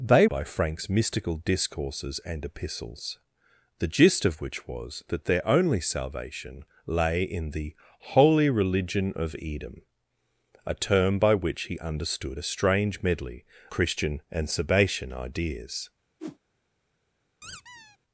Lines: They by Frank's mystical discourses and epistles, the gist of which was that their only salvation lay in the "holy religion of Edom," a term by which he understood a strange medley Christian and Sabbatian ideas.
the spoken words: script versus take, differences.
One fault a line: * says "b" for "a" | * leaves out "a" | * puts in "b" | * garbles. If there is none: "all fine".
all fine